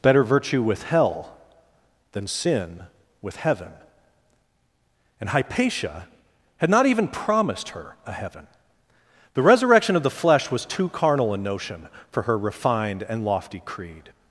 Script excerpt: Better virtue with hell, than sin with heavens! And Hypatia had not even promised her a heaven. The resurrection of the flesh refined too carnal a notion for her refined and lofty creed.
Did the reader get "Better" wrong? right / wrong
right